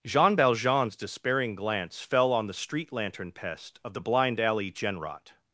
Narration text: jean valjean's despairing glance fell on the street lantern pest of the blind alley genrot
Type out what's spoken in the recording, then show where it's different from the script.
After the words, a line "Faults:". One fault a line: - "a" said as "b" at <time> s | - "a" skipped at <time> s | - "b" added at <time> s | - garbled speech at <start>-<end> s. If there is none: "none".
jean valjean's despairing glance fell on the street lantern pest of the blind alley genrot
Faults:
none